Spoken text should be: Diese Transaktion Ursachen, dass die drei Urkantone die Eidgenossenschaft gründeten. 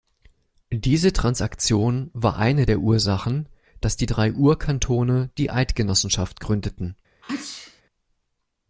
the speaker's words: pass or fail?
fail